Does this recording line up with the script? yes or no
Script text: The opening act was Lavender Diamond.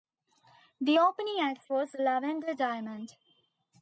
yes